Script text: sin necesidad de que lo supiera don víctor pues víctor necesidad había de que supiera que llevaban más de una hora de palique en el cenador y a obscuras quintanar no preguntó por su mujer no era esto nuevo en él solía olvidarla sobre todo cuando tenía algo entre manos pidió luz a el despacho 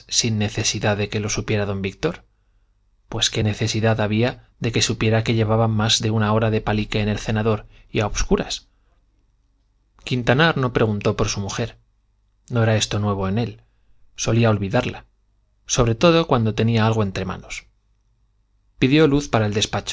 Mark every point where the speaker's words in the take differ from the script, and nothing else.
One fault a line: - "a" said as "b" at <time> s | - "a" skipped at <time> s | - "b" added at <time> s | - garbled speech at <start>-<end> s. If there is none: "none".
- "víctor" said as "qué" at 3.3 s
- "a" said as "para" at 19.3 s